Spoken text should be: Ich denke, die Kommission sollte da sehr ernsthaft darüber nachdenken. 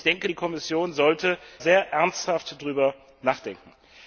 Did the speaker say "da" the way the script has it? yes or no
no